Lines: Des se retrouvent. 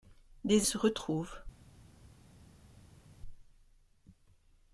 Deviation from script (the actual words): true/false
false